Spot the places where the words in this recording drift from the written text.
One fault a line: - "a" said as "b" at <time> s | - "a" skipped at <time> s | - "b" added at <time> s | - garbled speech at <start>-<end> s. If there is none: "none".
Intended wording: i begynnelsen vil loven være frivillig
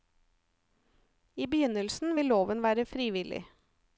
none